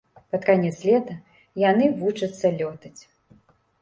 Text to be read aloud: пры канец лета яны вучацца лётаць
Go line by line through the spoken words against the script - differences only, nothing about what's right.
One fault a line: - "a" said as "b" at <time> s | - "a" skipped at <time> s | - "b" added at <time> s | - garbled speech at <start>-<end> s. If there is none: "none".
- "пры" said as "пад" at 0.3 s